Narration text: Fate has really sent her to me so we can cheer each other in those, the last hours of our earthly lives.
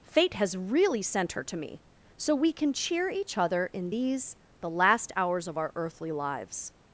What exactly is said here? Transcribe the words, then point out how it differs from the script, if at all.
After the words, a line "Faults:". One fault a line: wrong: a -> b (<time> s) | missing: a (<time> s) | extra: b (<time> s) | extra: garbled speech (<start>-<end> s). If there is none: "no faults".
Fate has really sent her to me so we can cheer each other in these, the last hours of our earthly lives.
Faults:
wrong: those -> these (3.9 s)